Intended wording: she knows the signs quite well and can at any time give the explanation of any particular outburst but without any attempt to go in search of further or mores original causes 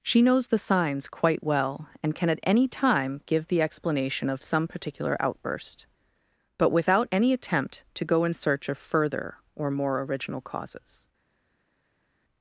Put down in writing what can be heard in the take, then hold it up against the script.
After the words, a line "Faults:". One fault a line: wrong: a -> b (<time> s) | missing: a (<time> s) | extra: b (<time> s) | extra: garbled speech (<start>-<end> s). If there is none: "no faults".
she knows the signs quite well and can at any time give the explanation of some particular outburst but without any attempt to go in search of further or more original causes
Faults:
wrong: any -> some (4.4 s)
wrong: mores -> more (9.7 s)